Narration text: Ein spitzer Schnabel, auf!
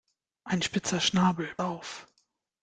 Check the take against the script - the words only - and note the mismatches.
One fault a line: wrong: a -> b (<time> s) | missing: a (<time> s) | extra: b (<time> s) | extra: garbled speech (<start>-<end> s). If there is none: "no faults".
no faults